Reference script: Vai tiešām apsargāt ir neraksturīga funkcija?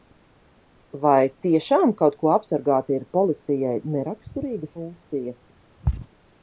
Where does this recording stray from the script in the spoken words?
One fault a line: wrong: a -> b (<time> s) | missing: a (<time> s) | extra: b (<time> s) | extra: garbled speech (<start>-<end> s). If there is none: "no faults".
extra: kaut ko (2.0 s)
extra: policijai (3.2 s)